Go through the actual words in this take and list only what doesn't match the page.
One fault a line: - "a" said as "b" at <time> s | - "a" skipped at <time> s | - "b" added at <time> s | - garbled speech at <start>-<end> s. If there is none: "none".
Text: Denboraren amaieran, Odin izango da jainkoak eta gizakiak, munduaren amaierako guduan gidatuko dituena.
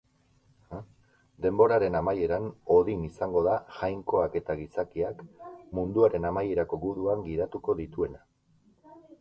none